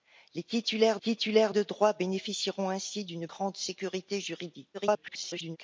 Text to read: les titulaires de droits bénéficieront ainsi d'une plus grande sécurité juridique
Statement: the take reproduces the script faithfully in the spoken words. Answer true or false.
false